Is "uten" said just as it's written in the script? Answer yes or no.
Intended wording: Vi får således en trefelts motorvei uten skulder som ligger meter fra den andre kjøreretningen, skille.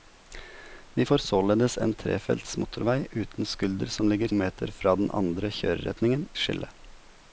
yes